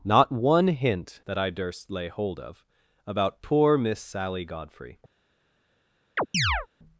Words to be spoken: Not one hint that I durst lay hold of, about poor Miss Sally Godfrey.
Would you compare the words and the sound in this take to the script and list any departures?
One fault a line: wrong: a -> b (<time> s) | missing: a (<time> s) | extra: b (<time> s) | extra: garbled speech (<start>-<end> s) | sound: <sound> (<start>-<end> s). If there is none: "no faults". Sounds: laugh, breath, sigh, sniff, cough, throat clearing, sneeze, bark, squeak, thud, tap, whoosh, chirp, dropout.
sound: chirp (6.2-6.7 s)